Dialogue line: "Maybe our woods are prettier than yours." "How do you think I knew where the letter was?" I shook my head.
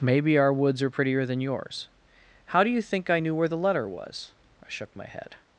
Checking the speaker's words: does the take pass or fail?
pass